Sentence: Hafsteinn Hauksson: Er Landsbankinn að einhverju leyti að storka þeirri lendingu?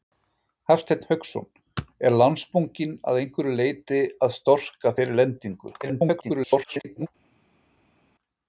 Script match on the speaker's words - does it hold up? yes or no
no